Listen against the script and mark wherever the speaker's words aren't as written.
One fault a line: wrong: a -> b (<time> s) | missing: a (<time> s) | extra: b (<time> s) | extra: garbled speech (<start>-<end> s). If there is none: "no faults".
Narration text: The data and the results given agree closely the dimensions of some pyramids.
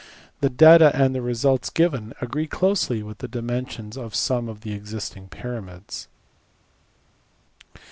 extra: with (3.0 s)
extra: of the existing (4.5 s)